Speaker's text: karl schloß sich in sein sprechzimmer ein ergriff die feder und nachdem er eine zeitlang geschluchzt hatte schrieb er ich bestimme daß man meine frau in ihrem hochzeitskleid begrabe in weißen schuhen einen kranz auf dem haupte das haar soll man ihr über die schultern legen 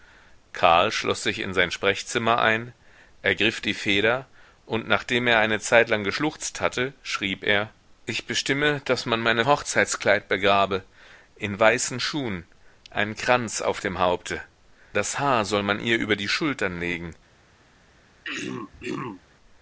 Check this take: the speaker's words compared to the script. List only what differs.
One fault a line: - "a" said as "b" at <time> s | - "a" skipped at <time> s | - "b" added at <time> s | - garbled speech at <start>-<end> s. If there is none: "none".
- "frau in ihrem" skipped at 9.4 s